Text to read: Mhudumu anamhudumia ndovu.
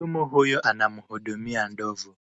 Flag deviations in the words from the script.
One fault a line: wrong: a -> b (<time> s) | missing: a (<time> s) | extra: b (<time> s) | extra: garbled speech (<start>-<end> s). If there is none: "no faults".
extra: huyu (0.2 s)